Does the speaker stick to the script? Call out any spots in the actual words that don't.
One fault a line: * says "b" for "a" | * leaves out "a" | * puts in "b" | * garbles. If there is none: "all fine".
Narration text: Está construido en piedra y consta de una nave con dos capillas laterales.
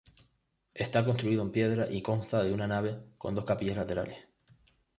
all fine